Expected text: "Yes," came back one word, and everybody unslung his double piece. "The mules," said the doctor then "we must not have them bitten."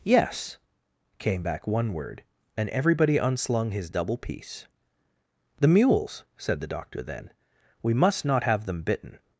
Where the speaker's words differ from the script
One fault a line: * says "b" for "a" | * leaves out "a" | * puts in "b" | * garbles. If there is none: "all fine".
all fine